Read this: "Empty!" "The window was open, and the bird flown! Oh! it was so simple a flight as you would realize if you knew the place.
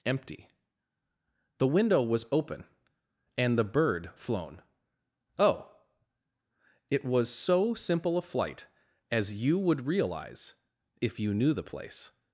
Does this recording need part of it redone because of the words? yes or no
no